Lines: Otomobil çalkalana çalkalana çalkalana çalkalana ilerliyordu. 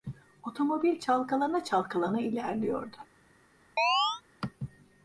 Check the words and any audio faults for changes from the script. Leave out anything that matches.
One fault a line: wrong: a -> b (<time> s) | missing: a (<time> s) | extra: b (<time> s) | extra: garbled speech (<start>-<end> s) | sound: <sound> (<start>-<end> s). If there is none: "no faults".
missing: çalkalana çalkalana (2.2 s)
sound: chirp (3.8-4.2 s)